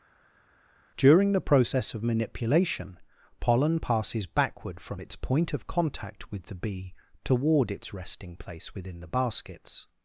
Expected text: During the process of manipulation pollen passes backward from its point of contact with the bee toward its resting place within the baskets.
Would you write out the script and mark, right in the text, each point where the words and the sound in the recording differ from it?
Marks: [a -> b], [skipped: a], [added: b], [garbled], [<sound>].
During the process of manipulation pollen passes backward from its point of contact with the bee toward its resting place within the baskets.